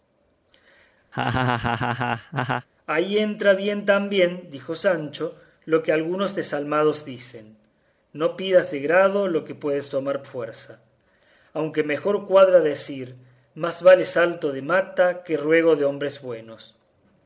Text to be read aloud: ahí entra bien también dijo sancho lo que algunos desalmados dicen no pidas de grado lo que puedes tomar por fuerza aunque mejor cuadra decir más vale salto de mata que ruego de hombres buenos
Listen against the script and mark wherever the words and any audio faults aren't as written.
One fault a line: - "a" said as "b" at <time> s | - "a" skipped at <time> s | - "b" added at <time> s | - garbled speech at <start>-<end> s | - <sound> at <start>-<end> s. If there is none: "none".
- laugh at 1.1-2.7 s
- "por" skipped at 10.2 s